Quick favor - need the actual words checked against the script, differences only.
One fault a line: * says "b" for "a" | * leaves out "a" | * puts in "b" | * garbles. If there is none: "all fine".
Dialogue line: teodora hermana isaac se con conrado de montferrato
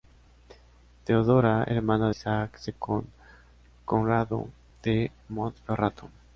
all fine